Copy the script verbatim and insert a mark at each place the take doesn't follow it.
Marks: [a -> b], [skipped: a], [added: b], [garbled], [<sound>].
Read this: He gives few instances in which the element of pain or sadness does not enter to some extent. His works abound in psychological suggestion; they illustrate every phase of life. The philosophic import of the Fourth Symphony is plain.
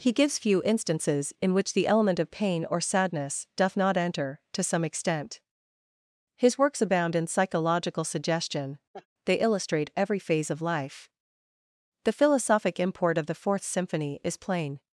He gives few instances in which the element of pain or sadness [does -> doth] not enter to some extent. His works abound in psychological suggestion; [laugh] they illustrate every phase of life. The philosophic import of the Fourth Symphony is plain.